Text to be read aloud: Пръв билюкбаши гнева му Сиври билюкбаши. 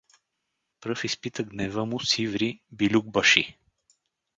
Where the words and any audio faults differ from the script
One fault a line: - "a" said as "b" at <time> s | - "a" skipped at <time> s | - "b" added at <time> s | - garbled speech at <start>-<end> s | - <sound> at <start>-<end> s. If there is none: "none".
- "билюкбаши" said as "изпита" at 1.0 s